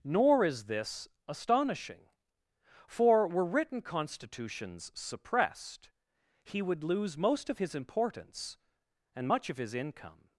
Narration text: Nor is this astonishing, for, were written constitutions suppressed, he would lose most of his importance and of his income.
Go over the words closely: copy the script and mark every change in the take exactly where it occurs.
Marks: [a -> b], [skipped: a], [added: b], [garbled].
Nor is this astonishing, for, were written constitutions suppressed, he would lose most of his importance and [added: much] of his income.